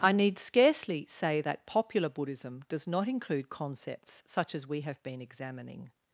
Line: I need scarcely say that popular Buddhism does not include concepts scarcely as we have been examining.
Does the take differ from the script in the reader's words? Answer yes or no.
yes